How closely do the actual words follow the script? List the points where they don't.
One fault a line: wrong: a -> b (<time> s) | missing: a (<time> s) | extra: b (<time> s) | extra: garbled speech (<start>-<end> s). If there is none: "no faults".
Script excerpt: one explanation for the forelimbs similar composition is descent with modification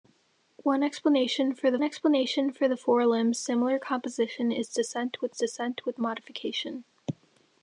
extra: explanation for the (1.8 s)
extra: descent with (5.3 s)